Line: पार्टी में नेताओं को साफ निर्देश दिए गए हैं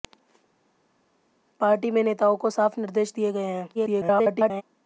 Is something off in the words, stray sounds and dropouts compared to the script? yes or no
yes